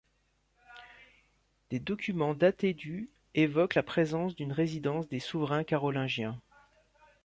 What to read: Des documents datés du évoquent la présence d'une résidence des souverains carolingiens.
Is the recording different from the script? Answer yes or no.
no